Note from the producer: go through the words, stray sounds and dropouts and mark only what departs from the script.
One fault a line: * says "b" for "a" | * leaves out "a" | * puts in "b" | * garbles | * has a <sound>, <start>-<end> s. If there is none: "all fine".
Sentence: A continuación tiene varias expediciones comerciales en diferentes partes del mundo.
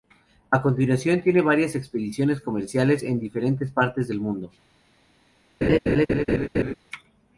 * has a laugh, 5.6-6.7 s